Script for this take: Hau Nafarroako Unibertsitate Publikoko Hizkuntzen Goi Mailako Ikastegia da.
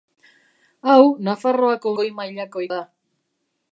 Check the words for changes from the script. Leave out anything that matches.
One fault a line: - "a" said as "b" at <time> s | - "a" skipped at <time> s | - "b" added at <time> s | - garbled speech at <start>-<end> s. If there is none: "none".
- "Unibertsitate Publikoko Hizkuntzen" skipped at 1.9 s
- "Ikastegia" skipped at 2.7 s